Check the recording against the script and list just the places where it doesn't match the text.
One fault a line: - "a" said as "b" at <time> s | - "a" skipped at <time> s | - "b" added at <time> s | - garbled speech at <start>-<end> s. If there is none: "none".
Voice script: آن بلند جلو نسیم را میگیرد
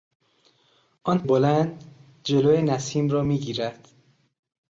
none